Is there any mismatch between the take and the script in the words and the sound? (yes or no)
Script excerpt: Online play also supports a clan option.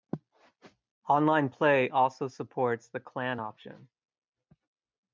yes